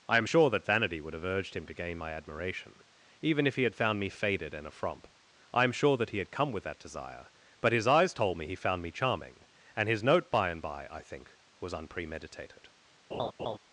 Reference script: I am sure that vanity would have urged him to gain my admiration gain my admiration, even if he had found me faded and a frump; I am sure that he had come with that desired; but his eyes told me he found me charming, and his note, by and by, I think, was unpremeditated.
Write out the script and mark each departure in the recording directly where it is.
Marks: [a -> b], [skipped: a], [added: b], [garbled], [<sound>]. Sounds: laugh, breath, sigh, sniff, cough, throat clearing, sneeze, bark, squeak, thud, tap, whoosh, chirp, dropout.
I am sure that vanity would have urged him to gain my admiration [skipped: gain my admiration,] even if he had found me faded and a frump; I am sure that he had come with that [desired; -> desire] but his eyes told me he found me charming, and his note, by and by, I think, was unpremeditated. [laugh]